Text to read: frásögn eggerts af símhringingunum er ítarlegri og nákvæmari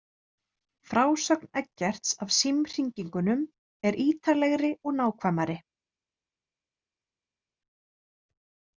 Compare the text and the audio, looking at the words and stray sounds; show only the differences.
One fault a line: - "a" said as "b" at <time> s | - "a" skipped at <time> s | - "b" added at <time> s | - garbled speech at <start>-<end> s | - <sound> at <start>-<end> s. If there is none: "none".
none